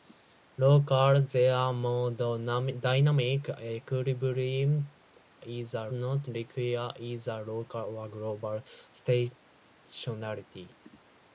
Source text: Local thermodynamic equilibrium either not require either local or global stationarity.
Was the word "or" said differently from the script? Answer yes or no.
no